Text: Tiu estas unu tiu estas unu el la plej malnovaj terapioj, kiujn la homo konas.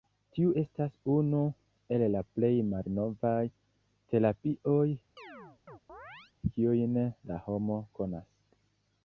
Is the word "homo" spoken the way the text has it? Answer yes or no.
yes